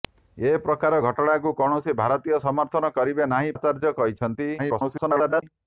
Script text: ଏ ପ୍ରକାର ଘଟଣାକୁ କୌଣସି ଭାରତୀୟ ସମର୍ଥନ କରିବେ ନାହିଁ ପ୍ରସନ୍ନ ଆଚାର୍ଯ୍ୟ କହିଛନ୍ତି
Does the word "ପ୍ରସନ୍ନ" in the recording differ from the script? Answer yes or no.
yes